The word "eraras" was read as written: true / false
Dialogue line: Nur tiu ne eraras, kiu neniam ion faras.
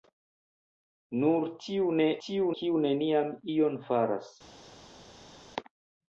false